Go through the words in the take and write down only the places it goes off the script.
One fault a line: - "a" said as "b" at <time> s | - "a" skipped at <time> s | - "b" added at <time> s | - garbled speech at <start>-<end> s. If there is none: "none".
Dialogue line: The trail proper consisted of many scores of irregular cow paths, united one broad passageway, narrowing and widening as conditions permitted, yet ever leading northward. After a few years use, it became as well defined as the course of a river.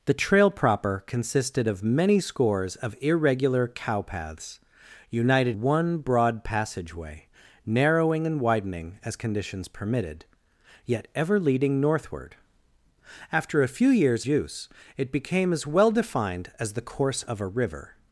none